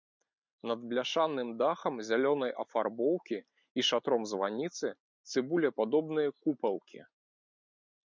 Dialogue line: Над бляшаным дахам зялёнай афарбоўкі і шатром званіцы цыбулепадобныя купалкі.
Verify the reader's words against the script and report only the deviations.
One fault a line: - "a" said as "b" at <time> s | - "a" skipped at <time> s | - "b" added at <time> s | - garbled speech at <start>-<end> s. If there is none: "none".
none